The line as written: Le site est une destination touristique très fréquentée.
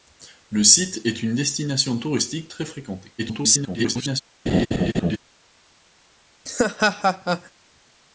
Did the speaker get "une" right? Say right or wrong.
right